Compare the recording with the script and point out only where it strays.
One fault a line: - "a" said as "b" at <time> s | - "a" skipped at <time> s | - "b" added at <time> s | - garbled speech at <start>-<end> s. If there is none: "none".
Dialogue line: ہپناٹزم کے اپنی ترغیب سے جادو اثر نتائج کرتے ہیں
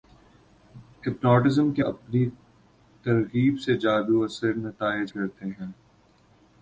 none